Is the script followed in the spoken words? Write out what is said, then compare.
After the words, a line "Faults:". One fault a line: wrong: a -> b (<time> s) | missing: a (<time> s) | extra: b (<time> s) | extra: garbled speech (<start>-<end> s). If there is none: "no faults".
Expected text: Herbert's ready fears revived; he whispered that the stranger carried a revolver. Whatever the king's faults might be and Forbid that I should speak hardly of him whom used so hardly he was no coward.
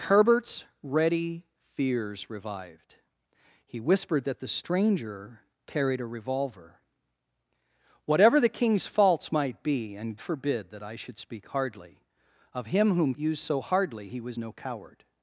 Herbert's ready fears revived; he whispered that the stranger carried a revolver. Whatever the king's faults might be and Forbid that I should speak hardly of him whom used so hardly he was no coward.
Faults:
no faults